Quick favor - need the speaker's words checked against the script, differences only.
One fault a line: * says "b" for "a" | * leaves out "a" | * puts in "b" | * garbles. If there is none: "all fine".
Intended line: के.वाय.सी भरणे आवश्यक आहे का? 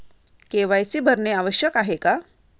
all fine